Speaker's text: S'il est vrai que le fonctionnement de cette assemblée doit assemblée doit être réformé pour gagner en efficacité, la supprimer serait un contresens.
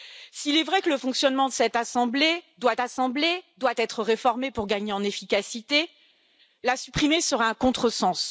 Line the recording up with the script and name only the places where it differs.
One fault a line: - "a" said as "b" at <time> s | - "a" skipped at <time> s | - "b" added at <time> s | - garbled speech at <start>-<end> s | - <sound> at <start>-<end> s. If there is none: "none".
none